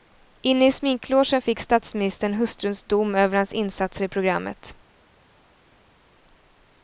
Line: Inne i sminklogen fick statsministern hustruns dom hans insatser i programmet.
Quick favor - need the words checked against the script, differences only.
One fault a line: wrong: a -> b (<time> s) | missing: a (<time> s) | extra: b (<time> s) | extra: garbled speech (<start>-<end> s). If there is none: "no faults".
extra: över (3.1 s)